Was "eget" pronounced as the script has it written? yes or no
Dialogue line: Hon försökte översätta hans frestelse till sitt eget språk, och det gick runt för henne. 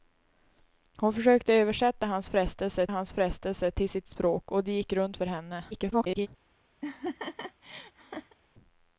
no